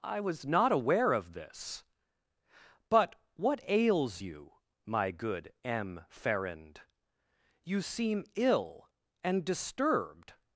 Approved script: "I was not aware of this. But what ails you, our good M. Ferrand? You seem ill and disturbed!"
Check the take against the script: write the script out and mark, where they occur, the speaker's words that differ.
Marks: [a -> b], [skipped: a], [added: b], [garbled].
"I was not aware of this. But what ails you, [our -> my] good M. Ferrand? You seem ill and disturbed!"